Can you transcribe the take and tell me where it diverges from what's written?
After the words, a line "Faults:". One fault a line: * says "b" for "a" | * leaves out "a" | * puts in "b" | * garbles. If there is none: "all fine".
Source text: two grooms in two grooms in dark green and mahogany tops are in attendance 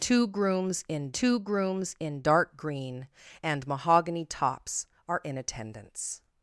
two grooms in two grooms in dark green and mahogany tops are in attendance
Faults:
all fine